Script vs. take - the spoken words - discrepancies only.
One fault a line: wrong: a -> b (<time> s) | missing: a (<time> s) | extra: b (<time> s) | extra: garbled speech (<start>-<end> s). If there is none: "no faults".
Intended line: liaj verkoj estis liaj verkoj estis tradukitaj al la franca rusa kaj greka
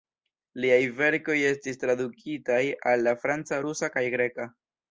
missing: liaj verkoj estis (1.8 s)